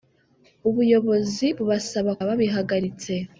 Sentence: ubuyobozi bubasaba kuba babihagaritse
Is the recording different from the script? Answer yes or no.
yes